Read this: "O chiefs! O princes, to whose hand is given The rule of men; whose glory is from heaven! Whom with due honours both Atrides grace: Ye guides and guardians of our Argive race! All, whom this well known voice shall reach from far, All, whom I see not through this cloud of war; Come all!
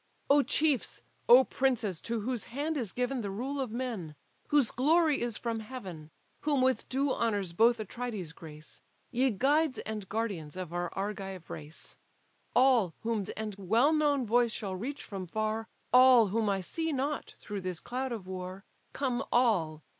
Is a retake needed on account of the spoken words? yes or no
yes